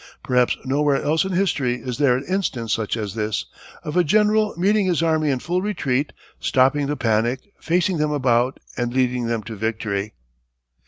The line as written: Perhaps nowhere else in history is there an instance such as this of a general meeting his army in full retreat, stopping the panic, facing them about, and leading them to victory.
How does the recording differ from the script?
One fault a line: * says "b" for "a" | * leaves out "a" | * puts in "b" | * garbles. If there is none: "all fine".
all fine